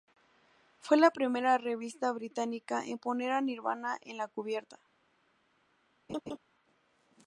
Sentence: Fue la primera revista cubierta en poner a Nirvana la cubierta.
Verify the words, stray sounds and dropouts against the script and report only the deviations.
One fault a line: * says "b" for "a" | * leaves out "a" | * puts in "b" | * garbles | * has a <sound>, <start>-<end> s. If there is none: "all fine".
* says "británica" for "cubierta"
* puts in "en"
* has a laugh, 6.1-6.4 s